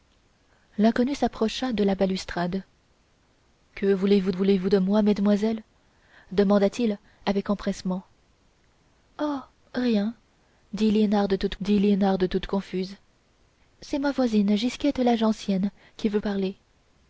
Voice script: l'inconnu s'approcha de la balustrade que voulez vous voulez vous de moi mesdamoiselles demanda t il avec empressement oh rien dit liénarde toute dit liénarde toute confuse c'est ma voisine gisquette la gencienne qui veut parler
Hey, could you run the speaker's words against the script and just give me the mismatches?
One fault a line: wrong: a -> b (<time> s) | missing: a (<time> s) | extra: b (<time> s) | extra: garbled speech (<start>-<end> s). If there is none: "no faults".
no faults